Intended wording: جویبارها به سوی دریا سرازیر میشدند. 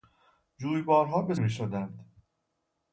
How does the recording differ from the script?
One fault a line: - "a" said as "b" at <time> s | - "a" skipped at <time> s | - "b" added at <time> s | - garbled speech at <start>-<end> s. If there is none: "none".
- "سوی دریا سرازیر" skipped at 1.4 s